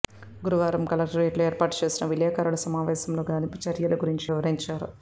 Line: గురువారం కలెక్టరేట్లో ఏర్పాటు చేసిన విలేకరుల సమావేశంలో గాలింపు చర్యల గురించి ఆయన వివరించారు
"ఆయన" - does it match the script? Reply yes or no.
no